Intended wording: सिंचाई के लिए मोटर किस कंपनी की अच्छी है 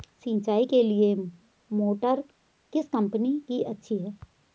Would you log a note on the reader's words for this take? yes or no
no